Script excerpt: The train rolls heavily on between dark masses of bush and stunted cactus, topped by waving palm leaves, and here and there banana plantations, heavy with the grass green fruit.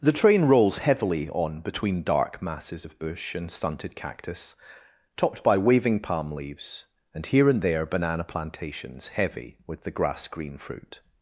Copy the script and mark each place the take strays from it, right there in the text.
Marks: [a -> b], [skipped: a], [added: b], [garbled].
The train rolls heavily on between dark masses of bush and stunted cactus, topped by waving palm leaves, and here and there banana plantations, heavy with the grass green fruit.